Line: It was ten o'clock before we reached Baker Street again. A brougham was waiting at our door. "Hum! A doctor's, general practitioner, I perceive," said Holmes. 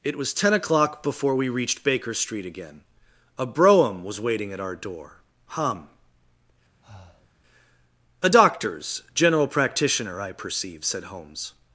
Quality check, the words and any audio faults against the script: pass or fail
fail